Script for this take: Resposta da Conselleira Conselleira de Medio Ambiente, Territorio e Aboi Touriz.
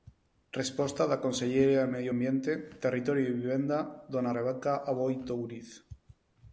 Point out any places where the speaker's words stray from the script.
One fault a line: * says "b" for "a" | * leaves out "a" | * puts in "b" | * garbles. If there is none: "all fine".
* leaves out "Conselleira"
* puts in "Vivenda dona Rebeca"